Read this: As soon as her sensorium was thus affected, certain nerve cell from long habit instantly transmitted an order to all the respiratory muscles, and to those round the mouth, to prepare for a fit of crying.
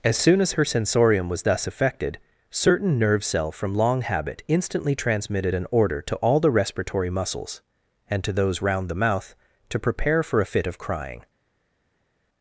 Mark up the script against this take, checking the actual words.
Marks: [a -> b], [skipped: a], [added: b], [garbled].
As soon as her sensorium was thus affected, certain nerve cell from long habit instantly transmitted an order to all the respiratory muscles, and to those round the mouth, to prepare for a fit of crying.